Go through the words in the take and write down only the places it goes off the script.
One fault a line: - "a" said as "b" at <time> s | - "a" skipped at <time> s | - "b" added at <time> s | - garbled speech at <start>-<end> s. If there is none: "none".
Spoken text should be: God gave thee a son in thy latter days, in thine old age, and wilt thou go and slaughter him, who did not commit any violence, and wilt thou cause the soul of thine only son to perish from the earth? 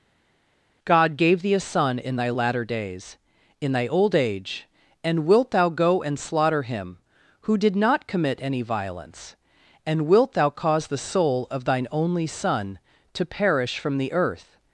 - "thine" said as "thy" at 3.7 s